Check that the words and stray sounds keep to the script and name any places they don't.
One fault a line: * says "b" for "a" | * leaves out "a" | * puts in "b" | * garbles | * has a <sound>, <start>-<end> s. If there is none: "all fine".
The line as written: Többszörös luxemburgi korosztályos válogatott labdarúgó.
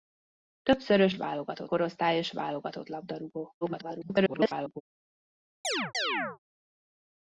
* says "válogatott" for "luxemburgi"
* garbles
* has a chirp, 5.6-6.4 s